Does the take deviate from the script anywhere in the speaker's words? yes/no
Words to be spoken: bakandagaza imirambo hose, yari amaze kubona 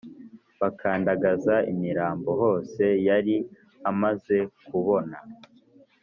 no